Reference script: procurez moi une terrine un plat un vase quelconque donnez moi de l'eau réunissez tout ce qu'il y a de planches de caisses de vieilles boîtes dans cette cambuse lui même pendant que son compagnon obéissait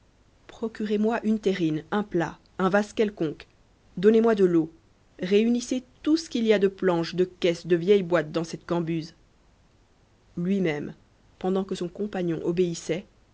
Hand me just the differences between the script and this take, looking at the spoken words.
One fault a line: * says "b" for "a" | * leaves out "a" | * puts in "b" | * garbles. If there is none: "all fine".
all fine